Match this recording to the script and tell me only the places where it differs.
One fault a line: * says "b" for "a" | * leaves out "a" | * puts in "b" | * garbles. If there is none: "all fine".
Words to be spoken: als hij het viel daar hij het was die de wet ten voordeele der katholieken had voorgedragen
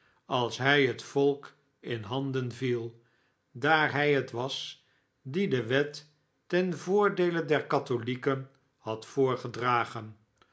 * puts in "volk in handen"